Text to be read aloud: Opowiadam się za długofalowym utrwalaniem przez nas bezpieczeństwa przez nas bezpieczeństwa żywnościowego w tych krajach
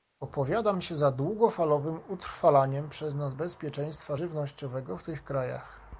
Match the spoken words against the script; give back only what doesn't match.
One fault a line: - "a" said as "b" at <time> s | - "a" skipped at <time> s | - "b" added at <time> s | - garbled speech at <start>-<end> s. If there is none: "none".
- "przez nas bezpieczeństwa" skipped at 4.2 s